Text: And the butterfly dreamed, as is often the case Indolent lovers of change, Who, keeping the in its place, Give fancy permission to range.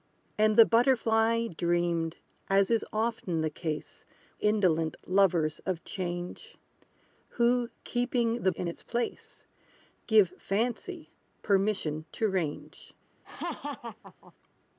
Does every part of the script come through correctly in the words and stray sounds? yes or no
no